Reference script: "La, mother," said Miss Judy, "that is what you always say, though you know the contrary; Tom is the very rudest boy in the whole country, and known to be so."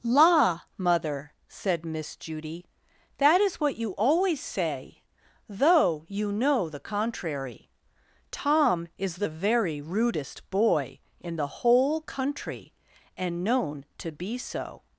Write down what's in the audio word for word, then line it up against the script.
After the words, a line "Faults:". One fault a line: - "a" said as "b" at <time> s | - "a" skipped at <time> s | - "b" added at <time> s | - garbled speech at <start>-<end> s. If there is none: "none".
"La, mother," said Miss Judy, "that is what you always say, though you know the contrary; Tom is the very rudest boy in the whole country, and known to be so."
Faults:
none